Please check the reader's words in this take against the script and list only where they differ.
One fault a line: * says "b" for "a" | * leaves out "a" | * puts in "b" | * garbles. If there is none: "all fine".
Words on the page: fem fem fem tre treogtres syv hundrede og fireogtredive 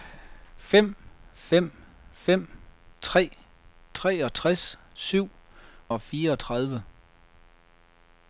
* leaves out "hundrede"